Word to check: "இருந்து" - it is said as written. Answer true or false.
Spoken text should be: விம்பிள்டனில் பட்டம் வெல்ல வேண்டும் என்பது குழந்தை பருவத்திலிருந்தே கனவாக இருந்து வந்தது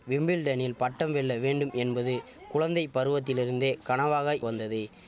false